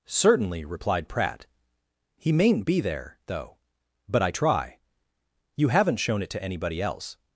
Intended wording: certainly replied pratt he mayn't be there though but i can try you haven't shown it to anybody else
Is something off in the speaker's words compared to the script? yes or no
yes